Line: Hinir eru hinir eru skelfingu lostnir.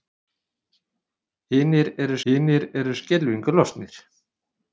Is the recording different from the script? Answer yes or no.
no